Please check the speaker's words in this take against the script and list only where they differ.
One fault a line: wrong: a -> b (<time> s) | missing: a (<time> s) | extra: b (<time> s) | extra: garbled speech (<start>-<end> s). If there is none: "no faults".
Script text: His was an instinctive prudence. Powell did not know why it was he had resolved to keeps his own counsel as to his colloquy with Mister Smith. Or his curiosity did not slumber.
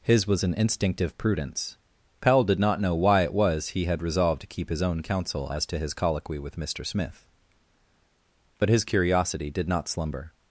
wrong: keeps -> keep (4.5 s)
wrong: Or -> But (8.6 s)